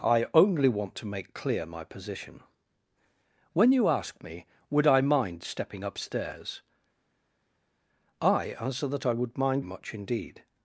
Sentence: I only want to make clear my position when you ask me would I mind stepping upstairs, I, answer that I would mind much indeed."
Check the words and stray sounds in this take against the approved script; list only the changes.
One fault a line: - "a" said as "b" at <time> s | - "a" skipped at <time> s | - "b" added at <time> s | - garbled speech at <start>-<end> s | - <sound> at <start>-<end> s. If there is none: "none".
none